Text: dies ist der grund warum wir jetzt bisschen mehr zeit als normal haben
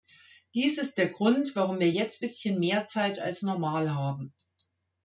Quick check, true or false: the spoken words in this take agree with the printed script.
true